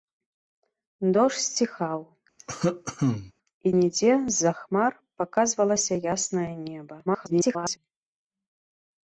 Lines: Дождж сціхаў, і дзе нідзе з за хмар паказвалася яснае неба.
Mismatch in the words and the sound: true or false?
true